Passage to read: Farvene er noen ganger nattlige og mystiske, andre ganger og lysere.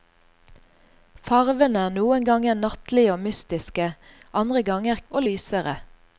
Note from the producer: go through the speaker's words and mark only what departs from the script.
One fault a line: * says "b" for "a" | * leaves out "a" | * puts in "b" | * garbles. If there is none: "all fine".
all fine